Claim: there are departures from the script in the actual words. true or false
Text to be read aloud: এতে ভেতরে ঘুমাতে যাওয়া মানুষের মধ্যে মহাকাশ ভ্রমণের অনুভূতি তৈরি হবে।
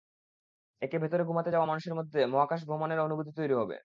false